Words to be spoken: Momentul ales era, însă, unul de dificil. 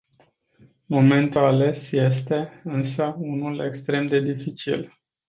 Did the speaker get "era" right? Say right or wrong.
wrong